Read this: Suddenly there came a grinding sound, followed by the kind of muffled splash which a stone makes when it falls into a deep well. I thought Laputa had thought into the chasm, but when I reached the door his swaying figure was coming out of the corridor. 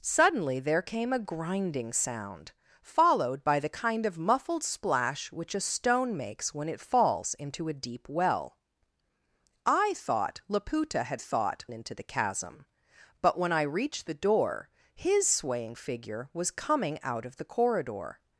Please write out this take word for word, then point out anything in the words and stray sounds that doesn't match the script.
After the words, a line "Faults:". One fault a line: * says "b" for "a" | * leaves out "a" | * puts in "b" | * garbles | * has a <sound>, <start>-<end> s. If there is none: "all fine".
Suddenly there came a grinding sound, followed by the kind of muffled splash which a stone makes when it falls into a deep well. I thought Laputa had thought into the chasm, but when I reached the door his swaying figure was coming out of the corridor.
Faults:
all fine